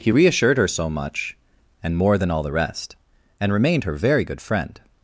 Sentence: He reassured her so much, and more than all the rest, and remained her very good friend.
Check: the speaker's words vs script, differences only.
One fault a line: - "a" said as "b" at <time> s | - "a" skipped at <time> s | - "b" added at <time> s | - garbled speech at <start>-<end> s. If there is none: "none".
none